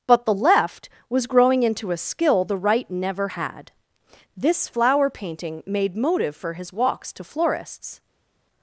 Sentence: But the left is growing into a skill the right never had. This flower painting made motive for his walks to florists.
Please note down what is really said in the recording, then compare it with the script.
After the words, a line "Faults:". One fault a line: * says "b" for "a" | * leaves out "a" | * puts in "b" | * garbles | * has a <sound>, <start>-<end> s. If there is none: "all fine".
But the left was growing into a skill the right never had. This flower painting made motive for his walks to florists.
Faults:
* says "was" for "is"